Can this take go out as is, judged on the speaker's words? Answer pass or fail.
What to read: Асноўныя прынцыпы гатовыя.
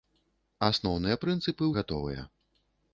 pass